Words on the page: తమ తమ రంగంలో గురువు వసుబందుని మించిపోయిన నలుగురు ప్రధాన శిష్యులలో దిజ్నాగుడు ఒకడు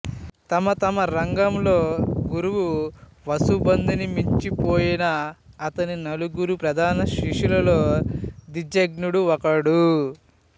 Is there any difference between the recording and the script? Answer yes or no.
yes